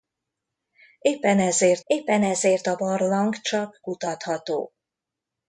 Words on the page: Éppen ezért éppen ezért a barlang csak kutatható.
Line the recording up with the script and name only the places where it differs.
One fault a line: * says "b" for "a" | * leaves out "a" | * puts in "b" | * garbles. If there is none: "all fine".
all fine